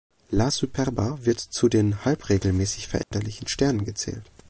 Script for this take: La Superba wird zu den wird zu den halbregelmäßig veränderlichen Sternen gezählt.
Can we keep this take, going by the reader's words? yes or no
no